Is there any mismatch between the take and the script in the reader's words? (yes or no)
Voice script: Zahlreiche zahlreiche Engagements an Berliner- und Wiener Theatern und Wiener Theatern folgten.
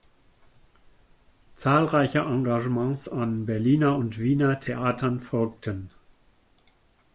yes